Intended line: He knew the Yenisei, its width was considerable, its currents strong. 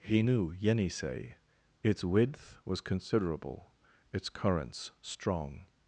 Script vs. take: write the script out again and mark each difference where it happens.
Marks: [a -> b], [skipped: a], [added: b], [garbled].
He knew [skipped: the] Yenisei, its width was considerable, its currents strong.